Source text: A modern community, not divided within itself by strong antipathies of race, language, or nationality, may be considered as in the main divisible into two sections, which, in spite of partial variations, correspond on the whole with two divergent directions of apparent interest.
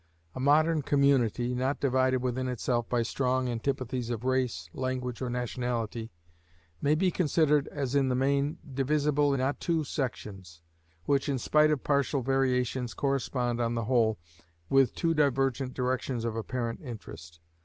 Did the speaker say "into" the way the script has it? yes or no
no